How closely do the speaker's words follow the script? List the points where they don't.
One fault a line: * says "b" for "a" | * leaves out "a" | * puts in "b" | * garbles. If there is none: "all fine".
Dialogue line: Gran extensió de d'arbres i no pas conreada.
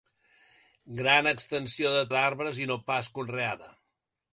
all fine